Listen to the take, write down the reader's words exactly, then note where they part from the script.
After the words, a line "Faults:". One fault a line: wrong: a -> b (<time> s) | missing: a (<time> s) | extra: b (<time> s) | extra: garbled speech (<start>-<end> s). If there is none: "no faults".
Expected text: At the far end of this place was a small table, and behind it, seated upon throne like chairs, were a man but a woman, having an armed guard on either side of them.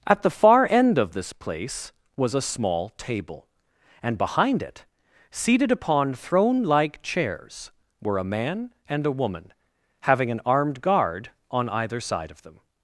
At the far end of this place was a small table, and behind it, seated upon throne like chairs, were a man and a woman, having an armed guard on either side of them.
Faults:
wrong: but -> and (8.9 s)